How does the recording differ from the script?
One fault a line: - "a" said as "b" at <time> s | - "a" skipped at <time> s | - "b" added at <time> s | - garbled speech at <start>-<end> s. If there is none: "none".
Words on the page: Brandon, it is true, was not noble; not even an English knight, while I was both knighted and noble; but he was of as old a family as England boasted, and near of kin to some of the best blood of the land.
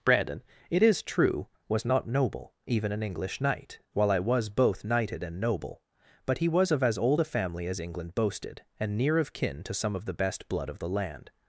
- "not" skipped at 2.5 s